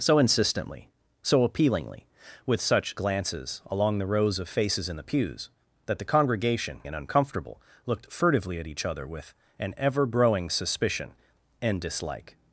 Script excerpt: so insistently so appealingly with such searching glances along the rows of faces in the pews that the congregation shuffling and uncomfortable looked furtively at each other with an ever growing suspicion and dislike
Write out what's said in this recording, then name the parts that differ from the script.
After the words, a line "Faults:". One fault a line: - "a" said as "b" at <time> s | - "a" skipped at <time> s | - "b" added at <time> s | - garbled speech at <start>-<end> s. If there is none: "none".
so insistently so appealingly with such glances along the rows of faces in the pews that the congregation and uncomfortable looked furtively at each other with an ever growing suspicion and dislike
Faults:
- "searching" skipped at 3.0 s
- "shuffling" skipped at 6.8 s